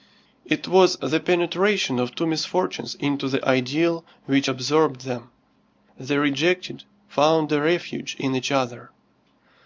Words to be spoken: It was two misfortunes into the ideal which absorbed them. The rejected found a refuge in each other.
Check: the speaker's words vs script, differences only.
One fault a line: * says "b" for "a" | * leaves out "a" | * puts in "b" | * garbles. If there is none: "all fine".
* puts in "the penetration of"